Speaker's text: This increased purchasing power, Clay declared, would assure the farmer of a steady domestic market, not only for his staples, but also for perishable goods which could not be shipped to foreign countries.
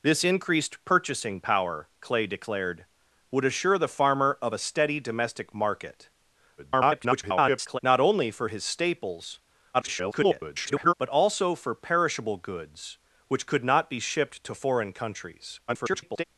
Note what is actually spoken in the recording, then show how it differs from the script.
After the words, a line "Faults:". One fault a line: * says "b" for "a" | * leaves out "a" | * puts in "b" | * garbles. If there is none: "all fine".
This increased purchasing power, Clay declared, would assure the farmer of a steady domestic market, [garbled] not only for his staples, [garbled] but also for perishable goods which could not be shipped to foreign countries. [garbled]
Faults:
* garbles
* garbles
* garbles